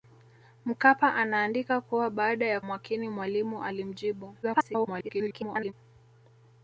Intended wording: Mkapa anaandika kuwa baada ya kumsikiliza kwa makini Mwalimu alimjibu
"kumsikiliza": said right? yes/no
no